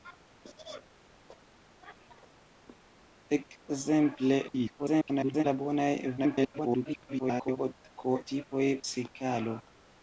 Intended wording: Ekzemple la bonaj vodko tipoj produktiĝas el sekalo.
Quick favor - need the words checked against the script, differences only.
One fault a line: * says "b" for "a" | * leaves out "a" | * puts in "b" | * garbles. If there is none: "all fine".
* garbles
* garbles
* leaves out "produktiĝas el"